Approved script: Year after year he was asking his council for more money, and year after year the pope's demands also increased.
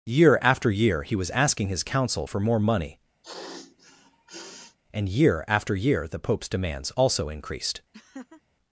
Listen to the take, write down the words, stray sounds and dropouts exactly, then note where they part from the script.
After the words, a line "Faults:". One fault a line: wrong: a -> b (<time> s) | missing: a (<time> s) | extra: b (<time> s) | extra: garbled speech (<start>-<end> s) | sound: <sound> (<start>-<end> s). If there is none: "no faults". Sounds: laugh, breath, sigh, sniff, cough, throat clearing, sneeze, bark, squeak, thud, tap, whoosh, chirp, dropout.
Year after year he was asking his council for more money, and year after year the pope's demands also increased.
Faults:
sound: sniff (3.2-4.8 s)
sound: laugh (7.9-8.4 s)